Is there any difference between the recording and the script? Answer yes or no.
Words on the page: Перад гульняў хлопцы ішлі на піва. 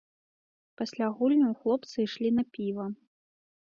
yes